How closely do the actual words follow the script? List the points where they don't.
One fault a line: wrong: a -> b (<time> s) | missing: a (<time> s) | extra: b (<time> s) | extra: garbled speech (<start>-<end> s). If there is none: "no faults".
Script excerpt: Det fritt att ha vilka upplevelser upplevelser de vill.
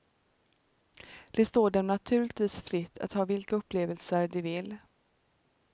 extra: står dem naturligtvis (1.4 s)
missing: upplevelser (4.3 s)